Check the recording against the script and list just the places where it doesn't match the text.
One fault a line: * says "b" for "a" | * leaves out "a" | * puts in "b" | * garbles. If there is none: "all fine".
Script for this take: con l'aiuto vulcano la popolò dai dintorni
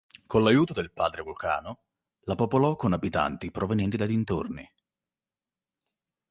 * puts in "del padre"
* puts in "con abitanti provenienti"